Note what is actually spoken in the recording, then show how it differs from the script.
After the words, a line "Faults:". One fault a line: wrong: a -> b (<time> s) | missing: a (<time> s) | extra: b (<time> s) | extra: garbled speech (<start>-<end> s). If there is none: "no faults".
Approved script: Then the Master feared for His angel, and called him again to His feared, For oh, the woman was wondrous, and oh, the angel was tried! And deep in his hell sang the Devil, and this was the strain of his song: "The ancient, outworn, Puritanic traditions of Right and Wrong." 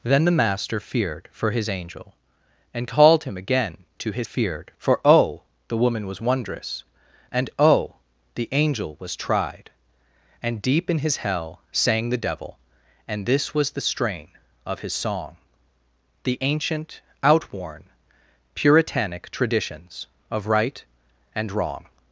Then the Master feared for His angel, and called him again to His feared, For oh, the woman was wondrous, and oh, the angel was tried! And deep in his hell sang the Devil, and this was the strain of his song: "The ancient, outworn, Puritanic traditions of Right and Wrong."
Faults:
no faults